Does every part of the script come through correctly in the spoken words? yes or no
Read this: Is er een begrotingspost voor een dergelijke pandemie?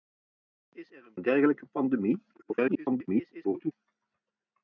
no